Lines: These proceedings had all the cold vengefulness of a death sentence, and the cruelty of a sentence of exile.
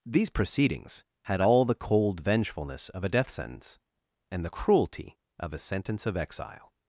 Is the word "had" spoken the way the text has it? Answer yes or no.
yes